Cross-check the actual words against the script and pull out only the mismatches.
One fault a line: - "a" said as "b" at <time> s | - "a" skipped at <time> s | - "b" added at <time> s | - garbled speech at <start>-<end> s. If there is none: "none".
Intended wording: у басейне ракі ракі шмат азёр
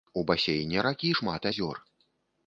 - "ракі" skipped at 1.1 s